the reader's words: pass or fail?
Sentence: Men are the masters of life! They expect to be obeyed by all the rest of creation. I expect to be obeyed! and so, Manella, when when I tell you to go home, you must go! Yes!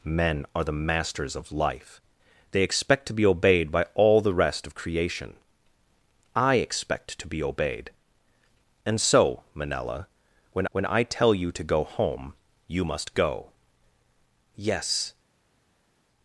pass